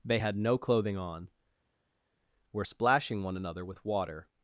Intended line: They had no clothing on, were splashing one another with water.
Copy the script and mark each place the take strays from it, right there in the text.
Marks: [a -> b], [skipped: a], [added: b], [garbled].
They had no clothing on, were splashing one another with water.